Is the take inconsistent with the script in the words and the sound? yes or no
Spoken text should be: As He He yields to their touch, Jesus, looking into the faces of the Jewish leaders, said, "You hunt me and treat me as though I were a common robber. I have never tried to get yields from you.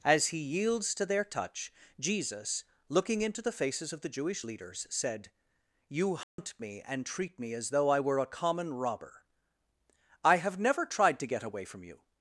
yes